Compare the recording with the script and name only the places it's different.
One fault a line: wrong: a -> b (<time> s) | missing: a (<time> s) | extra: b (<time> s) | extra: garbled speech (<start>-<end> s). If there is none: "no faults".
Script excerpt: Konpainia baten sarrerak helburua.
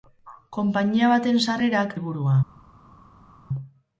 no faults